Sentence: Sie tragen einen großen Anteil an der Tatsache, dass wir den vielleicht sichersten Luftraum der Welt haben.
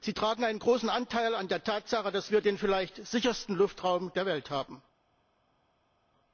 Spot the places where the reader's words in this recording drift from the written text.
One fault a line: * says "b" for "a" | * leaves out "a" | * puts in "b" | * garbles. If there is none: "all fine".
all fine